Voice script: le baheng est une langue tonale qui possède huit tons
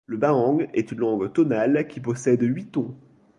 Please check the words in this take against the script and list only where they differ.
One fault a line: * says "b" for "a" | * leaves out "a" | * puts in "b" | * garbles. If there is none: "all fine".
all fine